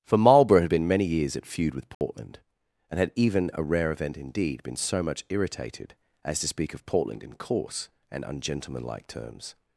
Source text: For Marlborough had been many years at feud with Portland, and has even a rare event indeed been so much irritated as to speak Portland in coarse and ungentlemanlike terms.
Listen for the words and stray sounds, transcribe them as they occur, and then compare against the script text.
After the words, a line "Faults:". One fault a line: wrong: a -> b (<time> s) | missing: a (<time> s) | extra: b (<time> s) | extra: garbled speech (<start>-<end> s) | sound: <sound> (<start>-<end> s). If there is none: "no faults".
For Marlborough had been many years at feud with Portland, and had even a rare event indeed been so much irritated as to speak of Portland in coarse and ungentlemanlike terms.
Faults:
sound: dropout (1.9-2.0 s)
wrong: has -> had (3.0 s)
extra: of (6.7 s)